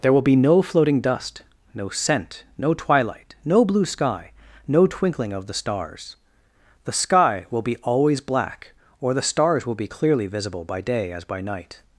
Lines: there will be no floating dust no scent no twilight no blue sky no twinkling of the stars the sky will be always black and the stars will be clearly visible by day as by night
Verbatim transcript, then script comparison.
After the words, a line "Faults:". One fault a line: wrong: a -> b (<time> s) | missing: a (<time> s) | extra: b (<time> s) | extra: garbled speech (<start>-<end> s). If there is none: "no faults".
there will be no floating dust no scent no twilight no blue sky no twinkling of the stars the sky will be always black or the stars will be clearly visible by day as by night
Faults:
wrong: and -> or (9.0 s)